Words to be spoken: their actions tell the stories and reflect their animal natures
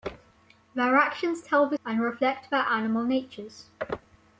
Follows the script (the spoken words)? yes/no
no